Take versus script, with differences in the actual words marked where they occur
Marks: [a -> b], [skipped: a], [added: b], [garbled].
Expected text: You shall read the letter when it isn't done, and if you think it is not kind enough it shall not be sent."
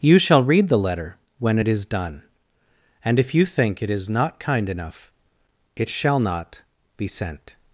You shall read the letter when it [isn't -> is] done, and if you think it is not kind enough it shall not be sent."